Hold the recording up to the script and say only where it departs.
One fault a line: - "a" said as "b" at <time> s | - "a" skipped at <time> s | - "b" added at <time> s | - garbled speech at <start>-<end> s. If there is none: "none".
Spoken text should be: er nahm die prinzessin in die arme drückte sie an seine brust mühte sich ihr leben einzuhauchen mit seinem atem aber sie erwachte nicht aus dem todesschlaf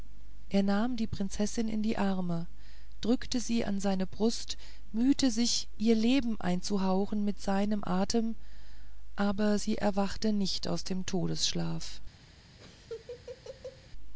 none